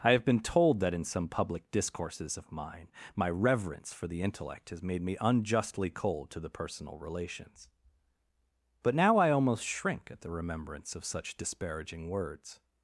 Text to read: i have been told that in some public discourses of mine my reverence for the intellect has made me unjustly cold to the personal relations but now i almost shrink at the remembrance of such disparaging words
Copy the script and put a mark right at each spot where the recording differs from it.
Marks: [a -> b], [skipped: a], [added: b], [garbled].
i have been told that in some public discourses of mine my reverence for the intellect has made me unjustly cold to the personal relations but now i almost shrink at the remembrance of such disparaging words